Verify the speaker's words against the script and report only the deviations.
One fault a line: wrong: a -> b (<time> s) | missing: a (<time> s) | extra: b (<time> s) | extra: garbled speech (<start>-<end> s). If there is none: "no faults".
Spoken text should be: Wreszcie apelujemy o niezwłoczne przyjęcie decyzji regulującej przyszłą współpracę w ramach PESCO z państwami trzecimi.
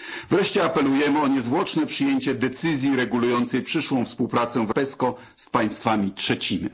missing: ramach (4.7 s)